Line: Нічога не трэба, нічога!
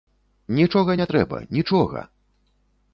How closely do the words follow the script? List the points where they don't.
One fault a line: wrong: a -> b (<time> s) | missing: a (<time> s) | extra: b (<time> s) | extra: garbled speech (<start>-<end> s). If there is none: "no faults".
no faults